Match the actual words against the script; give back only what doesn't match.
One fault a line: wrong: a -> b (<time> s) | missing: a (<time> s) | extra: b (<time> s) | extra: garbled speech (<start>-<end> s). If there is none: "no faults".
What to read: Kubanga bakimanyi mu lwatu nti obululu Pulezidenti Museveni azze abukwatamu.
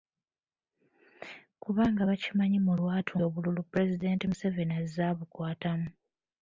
missing: nti (3.1 s)